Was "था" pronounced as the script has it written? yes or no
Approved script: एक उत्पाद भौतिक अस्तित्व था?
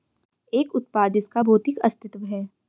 no